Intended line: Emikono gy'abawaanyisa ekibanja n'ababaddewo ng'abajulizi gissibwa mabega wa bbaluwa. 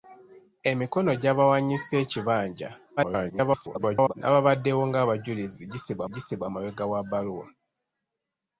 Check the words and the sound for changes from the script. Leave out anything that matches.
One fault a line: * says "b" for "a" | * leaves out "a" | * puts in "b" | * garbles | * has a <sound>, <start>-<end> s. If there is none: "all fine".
* garbles
* puts in "gissibwa"